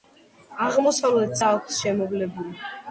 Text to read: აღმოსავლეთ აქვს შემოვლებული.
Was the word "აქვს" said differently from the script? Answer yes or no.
no